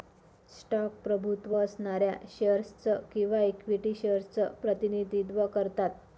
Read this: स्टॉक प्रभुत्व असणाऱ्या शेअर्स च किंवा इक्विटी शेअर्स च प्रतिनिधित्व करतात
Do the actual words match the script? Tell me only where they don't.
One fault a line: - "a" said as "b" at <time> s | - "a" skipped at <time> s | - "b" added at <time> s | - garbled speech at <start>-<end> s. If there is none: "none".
none